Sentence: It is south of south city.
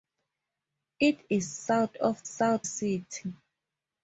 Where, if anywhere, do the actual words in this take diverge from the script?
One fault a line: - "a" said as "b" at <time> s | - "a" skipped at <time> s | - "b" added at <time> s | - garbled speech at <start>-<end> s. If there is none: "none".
none